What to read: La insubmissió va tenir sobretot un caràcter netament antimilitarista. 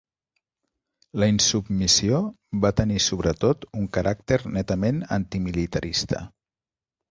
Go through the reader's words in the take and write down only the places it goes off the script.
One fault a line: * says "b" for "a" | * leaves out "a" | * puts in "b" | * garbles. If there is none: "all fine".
all fine